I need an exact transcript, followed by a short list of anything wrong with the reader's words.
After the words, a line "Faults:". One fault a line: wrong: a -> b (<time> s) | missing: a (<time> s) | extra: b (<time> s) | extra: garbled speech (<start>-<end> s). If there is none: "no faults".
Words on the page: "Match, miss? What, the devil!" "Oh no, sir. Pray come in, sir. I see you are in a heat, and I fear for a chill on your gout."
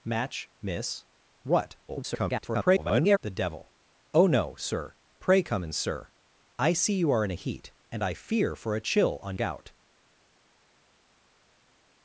"Match, miss? What, [garbled] the devil!" "Oh no, sir. Pray come in, sir. I see you are in a heat, and I fear for a chill on gout."
Faults:
extra: garbled speech (1.9-3.2 s)
missing: your (9.3 s)